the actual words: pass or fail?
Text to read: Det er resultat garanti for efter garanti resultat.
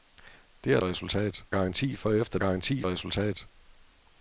pass